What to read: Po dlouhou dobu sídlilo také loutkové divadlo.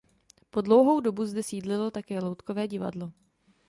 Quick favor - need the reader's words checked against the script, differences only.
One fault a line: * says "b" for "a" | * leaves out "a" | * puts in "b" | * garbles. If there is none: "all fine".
* puts in "zde"